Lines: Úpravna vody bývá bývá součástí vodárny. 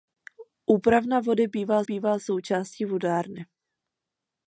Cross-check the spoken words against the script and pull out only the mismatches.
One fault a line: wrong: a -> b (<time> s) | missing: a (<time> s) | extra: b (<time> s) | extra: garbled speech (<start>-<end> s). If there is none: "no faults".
no faults